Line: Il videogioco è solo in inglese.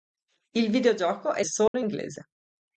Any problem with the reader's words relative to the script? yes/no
no